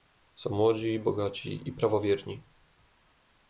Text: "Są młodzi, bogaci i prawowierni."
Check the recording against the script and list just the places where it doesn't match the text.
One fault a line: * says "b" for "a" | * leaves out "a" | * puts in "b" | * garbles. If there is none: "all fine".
all fine